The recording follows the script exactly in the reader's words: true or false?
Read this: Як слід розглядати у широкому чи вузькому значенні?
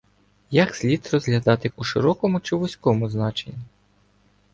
true